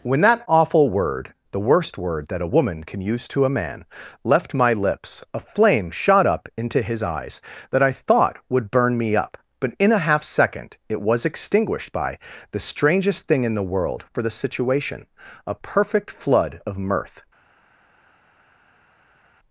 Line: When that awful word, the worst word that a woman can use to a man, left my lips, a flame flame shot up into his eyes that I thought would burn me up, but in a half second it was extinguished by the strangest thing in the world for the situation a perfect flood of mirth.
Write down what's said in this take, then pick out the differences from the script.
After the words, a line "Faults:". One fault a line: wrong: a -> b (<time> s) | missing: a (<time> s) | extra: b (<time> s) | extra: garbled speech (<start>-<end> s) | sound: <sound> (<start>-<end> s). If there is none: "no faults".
When that awful word, the worst word that a woman can use to a man, left my lips, a flame shot up into his eyes that I thought would burn me up, but in a half second it was extinguished by the strangest thing in the world for the situation a perfect flood of mirth.
Faults:
missing: flame (5.9 s)